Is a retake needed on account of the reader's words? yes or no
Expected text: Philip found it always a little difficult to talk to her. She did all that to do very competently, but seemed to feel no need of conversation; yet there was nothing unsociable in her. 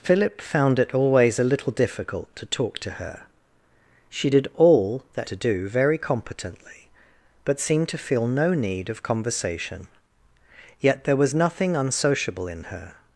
no